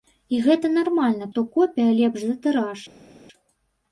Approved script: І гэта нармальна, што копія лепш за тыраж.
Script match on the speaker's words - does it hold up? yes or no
yes